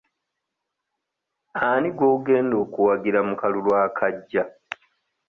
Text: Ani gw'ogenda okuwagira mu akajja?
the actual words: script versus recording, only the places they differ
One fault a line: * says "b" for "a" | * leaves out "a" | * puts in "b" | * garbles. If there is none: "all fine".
* puts in "kalulu"